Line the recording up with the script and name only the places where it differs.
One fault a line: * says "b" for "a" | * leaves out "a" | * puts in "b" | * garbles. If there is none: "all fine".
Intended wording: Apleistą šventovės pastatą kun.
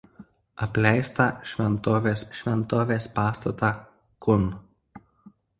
* puts in "šventovės"